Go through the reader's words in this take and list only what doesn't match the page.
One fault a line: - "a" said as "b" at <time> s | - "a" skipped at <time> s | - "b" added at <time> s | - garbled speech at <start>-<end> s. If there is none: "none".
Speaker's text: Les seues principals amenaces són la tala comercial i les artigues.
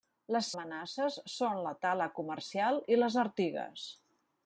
- "seues principals" skipped at 0.5 s